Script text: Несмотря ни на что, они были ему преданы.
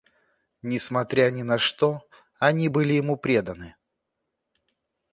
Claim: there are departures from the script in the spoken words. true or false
false